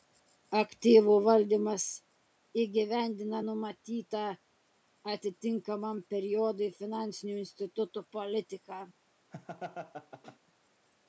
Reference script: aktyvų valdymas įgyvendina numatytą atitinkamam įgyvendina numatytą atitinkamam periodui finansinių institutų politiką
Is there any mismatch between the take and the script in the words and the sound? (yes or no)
yes